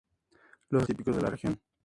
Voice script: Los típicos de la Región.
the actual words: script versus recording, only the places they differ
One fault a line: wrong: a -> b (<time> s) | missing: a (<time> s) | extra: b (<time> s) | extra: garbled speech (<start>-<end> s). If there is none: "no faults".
no faults